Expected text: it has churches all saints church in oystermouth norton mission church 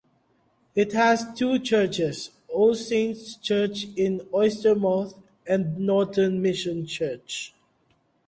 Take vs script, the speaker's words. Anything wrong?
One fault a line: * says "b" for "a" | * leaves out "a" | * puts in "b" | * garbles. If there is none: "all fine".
* puts in "two"
* puts in "and"